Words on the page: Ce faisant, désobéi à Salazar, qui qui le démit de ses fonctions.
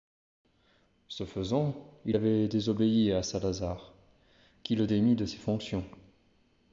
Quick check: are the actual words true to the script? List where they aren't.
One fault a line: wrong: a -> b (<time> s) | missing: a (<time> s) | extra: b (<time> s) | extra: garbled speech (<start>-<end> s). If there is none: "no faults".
extra: il avait (2.0 s)
missing: qui (4.7 s)